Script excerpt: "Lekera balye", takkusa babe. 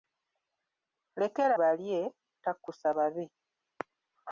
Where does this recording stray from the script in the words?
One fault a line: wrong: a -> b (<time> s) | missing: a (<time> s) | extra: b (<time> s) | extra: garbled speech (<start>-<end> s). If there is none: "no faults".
no faults